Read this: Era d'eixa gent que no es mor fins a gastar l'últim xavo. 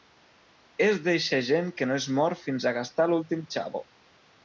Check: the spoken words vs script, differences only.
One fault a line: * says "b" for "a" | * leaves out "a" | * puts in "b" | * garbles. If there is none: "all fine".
* says "És" for "Era"